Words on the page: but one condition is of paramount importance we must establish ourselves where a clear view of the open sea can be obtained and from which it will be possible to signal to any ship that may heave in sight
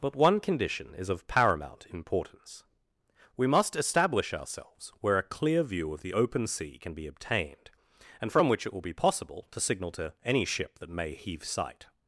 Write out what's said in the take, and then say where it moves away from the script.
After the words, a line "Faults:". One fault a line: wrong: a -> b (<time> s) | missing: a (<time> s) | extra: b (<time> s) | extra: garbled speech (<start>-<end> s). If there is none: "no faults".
but one condition is of paramount importance we must establish ourselves where a clear view of the open sea can be obtained and from which it will be possible to signal to any ship that may heave sight
Faults:
missing: in (11.4 s)